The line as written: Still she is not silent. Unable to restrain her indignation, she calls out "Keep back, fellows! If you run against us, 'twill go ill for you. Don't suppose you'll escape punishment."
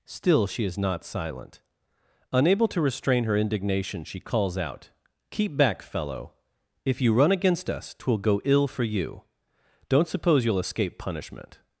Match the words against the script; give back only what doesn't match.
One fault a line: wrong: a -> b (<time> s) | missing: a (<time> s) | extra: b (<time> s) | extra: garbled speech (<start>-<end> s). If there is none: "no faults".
wrong: fellows -> fellow (5.8 s)